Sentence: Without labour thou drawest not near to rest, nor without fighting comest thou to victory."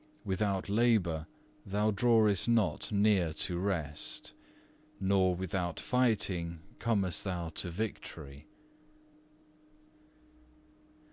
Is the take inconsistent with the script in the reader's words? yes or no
no